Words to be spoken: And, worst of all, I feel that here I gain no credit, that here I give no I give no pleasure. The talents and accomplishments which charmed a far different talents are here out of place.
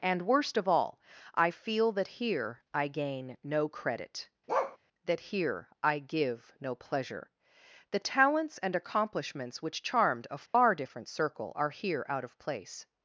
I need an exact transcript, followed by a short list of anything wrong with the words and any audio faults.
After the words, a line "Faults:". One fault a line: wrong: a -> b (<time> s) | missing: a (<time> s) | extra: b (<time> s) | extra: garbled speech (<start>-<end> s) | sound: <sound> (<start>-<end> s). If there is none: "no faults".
And, worst of all, I feel that here I gain no credit, that here I give no pleasure. The talents and accomplishments which charmed a far different circle are here out of place.
Faults:
sound: bark (4.5-4.8 s)
missing: I give no (6.7 s)
sound: dropout (10.5-10.5 s)
wrong: talents -> circle (11.1 s)